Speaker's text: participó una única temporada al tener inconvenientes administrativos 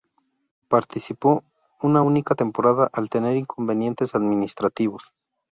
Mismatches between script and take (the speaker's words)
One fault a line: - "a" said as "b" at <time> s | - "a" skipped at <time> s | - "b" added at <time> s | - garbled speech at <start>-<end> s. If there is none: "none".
none